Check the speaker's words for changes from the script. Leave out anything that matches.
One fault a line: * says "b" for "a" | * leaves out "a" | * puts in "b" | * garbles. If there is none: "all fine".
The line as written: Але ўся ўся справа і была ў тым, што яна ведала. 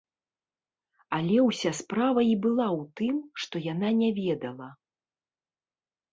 * leaves out "ўся"
* puts in "не"